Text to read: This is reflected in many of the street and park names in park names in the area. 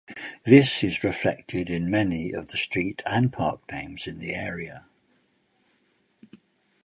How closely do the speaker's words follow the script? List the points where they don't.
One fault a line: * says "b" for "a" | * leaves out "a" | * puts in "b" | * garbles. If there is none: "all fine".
* leaves out "park names in"